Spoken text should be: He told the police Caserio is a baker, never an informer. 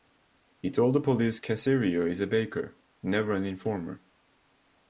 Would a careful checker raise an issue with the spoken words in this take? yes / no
no